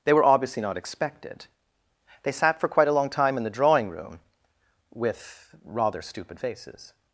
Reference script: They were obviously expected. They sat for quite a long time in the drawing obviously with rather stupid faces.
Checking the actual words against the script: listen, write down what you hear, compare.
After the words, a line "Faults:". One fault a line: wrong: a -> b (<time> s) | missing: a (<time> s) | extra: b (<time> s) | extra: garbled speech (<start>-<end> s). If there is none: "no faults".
They were obviously not expected. They sat for quite a long time in the drawing room with rather stupid faces.
Faults:
extra: not (0.6 s)
wrong: obviously -> room (3.9 s)